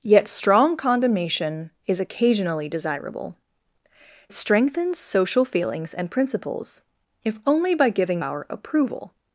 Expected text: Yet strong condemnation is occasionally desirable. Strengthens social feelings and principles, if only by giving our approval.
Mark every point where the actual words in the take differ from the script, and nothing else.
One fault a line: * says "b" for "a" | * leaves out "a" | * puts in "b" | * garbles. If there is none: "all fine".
all fine